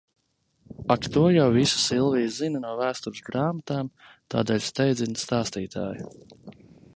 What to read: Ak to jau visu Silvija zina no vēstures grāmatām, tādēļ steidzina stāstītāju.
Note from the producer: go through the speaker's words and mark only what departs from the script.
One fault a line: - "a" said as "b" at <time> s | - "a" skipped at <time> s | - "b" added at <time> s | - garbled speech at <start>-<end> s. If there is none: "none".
none